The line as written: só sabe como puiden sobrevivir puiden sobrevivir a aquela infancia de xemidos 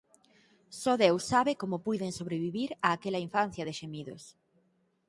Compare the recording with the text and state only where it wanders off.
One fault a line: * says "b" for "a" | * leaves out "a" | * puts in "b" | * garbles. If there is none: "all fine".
* puts in "deus"
* leaves out "puiden sobrevivir"